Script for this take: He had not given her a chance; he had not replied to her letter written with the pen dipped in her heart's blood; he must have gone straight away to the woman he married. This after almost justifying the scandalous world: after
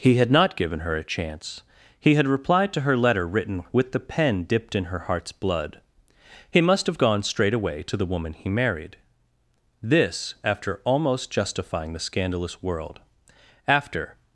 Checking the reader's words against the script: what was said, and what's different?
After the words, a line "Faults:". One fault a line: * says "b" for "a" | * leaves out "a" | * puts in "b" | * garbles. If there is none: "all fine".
He had not given her a chance; he had replied to her letter written with the pen dipped in her heart's blood; he must have gone straight away to the woman he married. This after almost justifying the scandalous world: after
Faults:
* leaves out "not"